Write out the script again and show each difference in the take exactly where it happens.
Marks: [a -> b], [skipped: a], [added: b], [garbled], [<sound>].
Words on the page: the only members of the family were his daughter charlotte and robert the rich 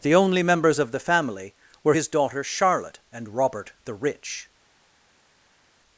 the only members of the family were his daughter charlotte and robert the rich